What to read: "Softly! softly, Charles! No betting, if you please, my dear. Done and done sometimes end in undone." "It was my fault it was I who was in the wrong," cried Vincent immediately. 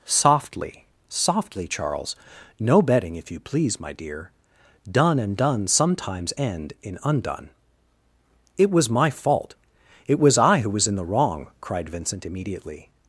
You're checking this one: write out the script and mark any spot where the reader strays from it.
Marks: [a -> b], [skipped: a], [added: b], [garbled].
"Softly! softly, Charles! No betting, if you please, my dear. Done and done sometimes end in undone." "It was my fault it was I who was in the wrong," cried Vincent immediately.